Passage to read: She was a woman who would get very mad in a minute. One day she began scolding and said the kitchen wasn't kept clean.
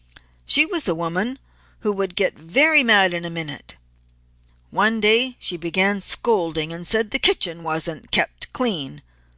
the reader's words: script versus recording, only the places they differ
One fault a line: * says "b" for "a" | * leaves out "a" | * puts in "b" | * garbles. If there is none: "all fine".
all fine